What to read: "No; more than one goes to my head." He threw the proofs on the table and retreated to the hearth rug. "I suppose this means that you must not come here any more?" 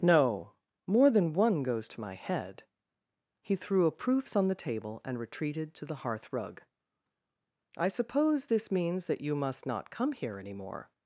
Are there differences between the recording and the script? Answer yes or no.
yes